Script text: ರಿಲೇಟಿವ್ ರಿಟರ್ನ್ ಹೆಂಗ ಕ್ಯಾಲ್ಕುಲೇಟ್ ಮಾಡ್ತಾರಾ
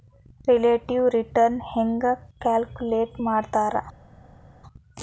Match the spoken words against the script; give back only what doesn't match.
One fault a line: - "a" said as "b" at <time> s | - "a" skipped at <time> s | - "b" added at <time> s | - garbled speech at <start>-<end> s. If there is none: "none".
none